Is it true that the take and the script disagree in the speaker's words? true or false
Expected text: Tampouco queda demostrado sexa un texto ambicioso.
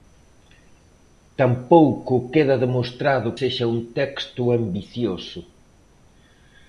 false